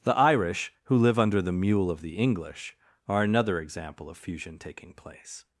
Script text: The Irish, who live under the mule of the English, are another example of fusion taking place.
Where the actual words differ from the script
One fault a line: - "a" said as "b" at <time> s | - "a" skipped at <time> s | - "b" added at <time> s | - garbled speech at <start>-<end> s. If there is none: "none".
none